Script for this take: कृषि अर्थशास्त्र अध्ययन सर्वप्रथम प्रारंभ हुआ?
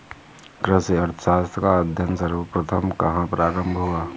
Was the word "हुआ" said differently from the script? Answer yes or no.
no